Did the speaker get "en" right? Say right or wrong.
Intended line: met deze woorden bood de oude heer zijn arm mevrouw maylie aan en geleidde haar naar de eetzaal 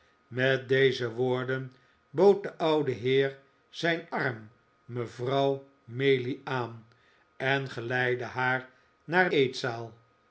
right